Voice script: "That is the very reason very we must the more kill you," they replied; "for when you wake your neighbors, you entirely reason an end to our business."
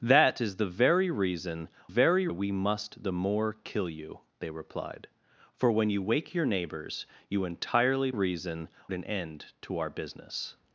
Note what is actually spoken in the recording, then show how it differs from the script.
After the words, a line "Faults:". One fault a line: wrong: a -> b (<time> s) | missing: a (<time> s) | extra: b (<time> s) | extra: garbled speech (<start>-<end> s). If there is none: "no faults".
"That is the very reason very we must the more kill you," they replied; "for when you wake your neighbors, you entirely reason an end to our business."
Faults:
no faults